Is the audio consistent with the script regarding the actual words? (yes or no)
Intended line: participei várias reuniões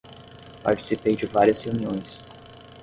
no